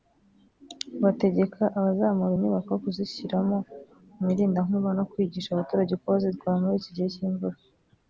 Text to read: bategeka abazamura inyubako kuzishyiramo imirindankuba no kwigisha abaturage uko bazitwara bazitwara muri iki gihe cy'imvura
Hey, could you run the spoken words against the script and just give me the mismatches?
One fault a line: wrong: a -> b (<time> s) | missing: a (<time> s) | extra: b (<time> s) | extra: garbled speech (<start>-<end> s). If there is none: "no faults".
missing: bazitwara (6.6 s)